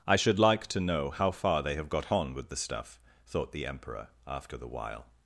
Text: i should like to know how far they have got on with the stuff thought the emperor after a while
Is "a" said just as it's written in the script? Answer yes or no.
no